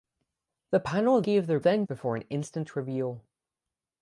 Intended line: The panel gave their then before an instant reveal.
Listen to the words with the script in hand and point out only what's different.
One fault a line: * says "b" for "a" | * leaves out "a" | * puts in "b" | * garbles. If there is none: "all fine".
all fine